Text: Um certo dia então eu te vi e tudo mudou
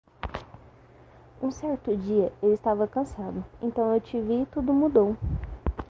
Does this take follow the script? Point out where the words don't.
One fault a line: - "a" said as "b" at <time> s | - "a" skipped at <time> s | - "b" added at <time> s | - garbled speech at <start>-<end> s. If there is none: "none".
- "eu estava cansado" added at 2.4 s